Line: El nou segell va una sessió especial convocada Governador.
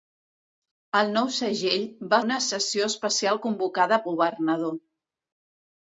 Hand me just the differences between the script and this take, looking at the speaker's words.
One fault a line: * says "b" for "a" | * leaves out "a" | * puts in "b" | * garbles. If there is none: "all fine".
all fine